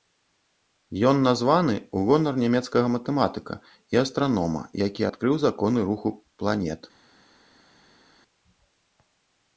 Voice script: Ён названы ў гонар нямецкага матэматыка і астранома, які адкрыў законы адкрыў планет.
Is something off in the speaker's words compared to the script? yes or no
yes